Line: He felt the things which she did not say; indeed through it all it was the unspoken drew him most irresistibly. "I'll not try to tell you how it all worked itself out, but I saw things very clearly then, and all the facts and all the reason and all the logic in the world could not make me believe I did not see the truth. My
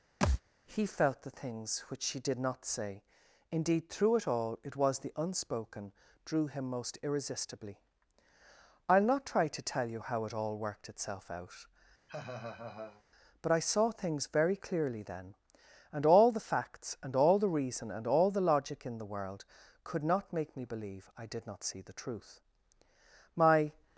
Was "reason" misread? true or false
false